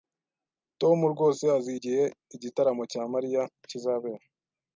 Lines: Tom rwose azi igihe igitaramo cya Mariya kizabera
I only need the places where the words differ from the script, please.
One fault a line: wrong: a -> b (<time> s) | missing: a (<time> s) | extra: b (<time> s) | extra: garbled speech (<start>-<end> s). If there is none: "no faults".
no faults